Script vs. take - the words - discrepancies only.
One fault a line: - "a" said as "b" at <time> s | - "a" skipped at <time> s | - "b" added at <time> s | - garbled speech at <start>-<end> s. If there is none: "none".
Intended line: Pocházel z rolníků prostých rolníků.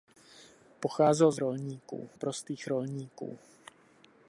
none